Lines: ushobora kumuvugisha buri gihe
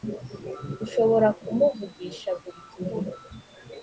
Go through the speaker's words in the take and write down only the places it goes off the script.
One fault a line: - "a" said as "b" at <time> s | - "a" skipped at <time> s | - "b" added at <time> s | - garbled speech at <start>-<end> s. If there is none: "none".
none